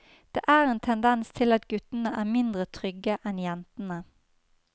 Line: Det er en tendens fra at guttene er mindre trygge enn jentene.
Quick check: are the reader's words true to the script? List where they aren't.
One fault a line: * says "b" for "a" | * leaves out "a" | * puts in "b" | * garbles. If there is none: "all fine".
* says "til" for "fra"